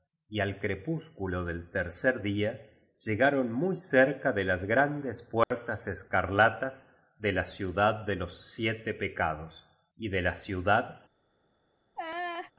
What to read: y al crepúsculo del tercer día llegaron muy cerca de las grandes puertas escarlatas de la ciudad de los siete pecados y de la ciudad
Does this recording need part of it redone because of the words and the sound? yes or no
yes